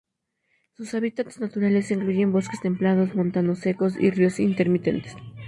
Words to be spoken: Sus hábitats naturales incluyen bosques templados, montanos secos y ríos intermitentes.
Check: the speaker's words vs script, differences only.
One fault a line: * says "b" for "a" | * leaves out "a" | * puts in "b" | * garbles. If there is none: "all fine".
all fine